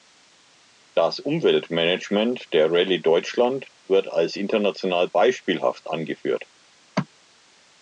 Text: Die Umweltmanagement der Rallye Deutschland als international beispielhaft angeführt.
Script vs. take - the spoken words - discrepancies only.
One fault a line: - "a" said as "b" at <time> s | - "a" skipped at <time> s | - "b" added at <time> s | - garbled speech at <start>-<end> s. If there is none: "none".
- "Die" said as "Das" at 0.9 s
- "wird" added at 3.8 s